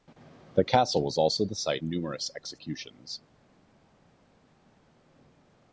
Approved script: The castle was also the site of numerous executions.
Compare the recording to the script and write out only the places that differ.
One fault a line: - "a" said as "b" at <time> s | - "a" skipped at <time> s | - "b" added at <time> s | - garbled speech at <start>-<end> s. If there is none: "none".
- "of" skipped at 1.8 s